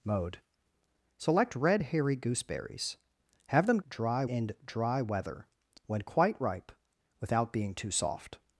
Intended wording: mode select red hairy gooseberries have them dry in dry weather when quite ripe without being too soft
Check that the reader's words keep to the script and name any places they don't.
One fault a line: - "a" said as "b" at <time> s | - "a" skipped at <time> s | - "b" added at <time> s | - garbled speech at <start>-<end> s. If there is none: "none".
none